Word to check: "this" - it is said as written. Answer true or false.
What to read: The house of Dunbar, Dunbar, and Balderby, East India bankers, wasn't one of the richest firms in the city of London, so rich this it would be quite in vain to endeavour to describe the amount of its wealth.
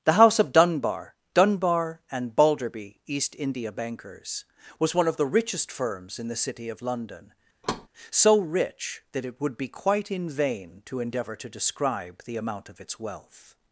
false